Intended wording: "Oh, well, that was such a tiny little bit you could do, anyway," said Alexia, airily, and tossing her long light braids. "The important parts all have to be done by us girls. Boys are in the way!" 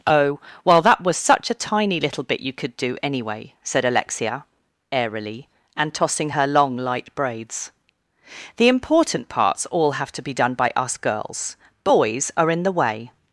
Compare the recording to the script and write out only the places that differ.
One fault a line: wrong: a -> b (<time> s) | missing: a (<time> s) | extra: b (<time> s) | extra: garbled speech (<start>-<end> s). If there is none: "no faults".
no faults